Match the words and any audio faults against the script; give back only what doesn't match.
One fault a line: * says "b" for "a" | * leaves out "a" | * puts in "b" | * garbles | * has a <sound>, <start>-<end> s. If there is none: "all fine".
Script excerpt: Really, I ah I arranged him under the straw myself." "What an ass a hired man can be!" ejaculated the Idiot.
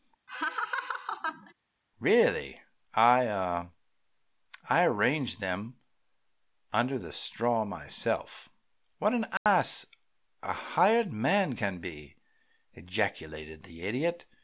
* has a laugh, 0.3-1.5 s
* says "them" for "him"
* has a dropout, 9.4-9.5 s